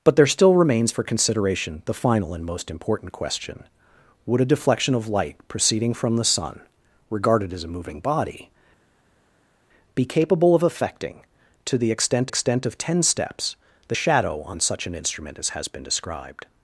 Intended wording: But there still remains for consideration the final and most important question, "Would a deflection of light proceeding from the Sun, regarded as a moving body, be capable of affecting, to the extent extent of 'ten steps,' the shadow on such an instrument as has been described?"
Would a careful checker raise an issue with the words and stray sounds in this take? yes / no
no